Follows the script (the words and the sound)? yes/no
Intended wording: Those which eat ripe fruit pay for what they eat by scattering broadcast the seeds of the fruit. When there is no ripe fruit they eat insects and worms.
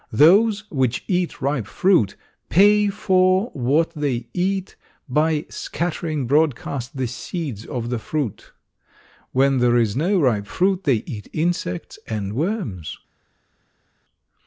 yes